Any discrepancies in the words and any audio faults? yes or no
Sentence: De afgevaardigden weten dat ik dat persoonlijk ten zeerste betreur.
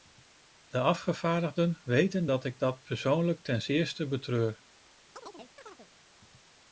yes